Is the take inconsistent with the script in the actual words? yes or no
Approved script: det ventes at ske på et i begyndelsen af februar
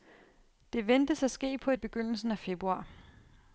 no